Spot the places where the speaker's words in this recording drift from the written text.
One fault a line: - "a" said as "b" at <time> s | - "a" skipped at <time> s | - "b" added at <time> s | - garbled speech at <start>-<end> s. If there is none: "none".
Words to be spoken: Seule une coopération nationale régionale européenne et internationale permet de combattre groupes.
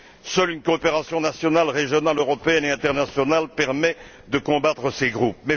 - "ces" added at 4.9 s